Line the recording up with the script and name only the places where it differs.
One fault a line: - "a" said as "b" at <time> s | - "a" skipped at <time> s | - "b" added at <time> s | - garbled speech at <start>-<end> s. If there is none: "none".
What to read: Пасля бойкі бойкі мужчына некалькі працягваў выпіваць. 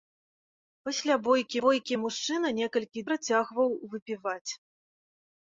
none